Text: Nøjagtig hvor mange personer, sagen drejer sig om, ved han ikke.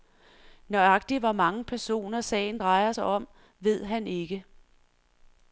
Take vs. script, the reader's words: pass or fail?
pass